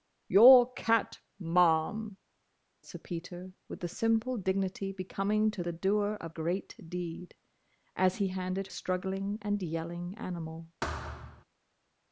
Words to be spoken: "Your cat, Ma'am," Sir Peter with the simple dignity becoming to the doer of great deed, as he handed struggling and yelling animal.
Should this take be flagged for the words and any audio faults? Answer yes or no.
yes